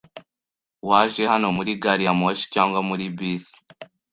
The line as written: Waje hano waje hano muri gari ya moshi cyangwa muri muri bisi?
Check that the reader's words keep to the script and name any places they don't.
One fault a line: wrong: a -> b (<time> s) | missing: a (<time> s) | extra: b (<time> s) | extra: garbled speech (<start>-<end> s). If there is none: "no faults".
missing: waje hano (1.5 s)
missing: muri (3.0 s)